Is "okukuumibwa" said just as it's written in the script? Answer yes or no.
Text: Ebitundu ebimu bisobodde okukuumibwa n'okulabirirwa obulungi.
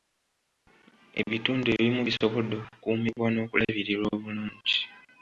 yes